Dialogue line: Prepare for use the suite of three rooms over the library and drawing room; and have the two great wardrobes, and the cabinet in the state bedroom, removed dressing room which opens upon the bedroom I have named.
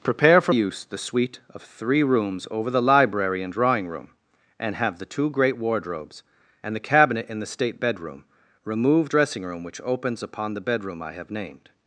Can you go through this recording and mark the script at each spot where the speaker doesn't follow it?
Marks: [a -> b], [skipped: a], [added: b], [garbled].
Prepare for use the suite of three rooms over the library and drawing room; and have the two great wardrobes, and the cabinet in the state bedroom, removed dressing room which opens upon the bedroom I have named.